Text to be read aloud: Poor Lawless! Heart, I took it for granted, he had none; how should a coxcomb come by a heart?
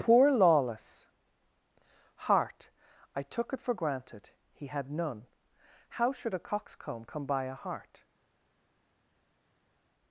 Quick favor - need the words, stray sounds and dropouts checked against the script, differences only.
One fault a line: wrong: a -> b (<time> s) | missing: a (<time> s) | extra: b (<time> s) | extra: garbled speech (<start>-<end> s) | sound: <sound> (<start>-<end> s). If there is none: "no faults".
no faults